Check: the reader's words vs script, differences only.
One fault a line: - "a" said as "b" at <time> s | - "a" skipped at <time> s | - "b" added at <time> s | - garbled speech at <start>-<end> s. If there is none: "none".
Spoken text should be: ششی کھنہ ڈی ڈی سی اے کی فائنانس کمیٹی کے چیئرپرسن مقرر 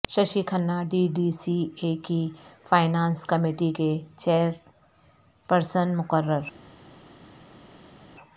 none